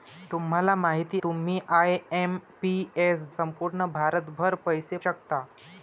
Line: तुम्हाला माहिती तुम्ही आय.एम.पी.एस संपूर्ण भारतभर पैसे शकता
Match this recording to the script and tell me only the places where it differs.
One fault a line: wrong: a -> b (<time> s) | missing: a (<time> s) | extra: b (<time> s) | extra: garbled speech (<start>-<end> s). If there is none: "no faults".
no faults